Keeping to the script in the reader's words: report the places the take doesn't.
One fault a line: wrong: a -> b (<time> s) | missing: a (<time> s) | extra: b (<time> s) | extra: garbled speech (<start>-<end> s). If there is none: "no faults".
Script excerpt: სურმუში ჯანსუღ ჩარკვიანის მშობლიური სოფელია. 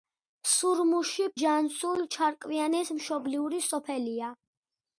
no faults